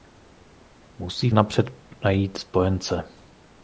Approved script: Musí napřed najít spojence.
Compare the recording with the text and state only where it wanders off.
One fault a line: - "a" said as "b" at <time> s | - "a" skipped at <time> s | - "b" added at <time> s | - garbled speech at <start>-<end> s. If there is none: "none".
none